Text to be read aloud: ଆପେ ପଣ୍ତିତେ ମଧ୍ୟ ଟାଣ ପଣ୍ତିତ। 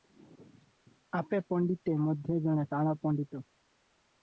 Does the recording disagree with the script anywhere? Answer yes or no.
yes